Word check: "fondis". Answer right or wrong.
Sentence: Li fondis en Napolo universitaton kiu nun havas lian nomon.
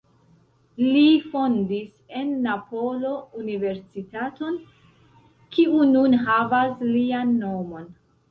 right